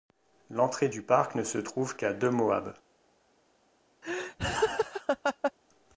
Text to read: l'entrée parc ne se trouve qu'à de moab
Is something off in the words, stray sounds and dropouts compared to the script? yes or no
yes